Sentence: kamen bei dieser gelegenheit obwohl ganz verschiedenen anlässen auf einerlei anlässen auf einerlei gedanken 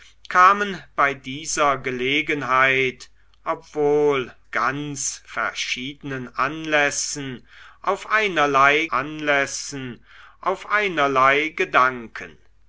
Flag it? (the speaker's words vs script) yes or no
no